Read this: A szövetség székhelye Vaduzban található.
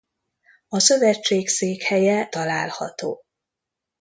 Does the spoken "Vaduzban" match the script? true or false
false